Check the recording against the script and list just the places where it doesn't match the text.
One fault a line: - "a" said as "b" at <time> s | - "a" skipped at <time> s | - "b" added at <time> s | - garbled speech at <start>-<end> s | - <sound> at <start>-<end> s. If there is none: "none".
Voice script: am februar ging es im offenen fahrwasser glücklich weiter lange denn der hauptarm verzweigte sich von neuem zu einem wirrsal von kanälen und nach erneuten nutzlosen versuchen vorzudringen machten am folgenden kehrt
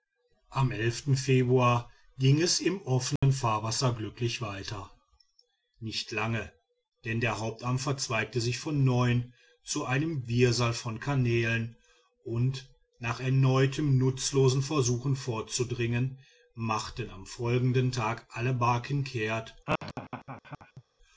- dropout at 3.2-3.2 s
- "nicht" added at 5.8 s
- "tag alle barken" added at 17.9 s
- laugh at 19.7-20.8 s